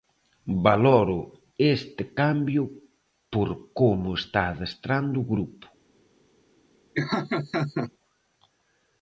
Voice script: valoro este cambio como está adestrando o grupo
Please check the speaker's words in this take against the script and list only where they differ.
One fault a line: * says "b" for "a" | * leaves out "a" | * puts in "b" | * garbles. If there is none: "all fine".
* puts in "por"